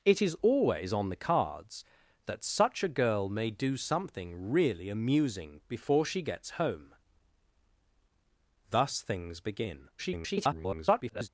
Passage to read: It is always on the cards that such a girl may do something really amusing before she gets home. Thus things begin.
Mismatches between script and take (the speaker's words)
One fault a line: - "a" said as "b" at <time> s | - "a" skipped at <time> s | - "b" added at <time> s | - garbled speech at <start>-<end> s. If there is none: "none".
- garbled speech at 10.0-11.3 s